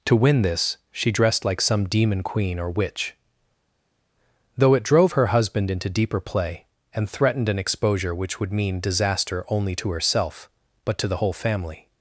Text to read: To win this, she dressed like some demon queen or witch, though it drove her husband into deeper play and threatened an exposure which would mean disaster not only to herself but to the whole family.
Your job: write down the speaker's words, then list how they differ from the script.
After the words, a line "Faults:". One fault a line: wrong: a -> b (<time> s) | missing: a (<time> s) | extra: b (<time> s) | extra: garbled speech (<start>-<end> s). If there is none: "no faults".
To win this, she dressed like some demon queen or witch, though it drove her husband into deeper play and threatened an exposure which would mean disaster only to herself but to the whole family.
Faults:
missing: not (9.4 s)